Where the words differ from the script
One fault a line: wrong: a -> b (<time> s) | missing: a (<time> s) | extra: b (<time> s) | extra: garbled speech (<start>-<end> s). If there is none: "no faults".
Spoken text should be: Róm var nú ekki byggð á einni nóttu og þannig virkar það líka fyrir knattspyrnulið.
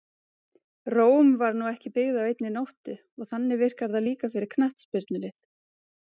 no faults